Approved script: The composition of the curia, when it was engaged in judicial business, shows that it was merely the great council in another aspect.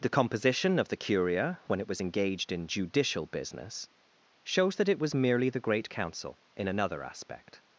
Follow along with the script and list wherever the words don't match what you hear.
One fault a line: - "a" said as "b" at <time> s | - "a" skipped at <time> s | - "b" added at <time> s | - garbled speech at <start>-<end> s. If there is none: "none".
none